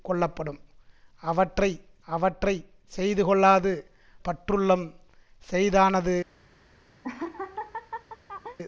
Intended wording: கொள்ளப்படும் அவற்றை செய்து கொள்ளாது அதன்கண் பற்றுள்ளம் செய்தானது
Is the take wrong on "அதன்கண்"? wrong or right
wrong